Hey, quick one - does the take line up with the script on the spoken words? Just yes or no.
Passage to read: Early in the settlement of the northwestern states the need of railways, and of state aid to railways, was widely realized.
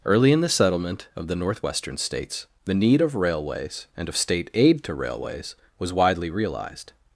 yes